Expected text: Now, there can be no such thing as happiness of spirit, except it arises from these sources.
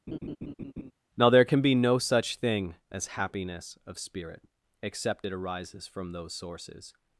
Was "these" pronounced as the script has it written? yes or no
no